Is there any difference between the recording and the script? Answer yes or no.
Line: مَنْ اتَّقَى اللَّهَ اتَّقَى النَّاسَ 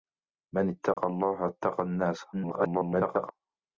yes